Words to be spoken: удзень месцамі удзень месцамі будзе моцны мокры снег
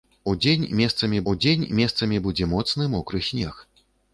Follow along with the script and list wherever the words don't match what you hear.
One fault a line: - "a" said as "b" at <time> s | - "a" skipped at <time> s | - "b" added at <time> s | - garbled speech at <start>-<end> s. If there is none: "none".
none